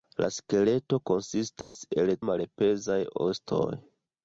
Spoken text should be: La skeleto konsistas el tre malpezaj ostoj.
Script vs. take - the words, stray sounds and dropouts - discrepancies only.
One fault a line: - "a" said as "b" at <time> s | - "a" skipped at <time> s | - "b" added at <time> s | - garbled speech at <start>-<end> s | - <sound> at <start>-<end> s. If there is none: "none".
- dropout at 1.6-1.8 s
- "tre" skipped at 2.1 s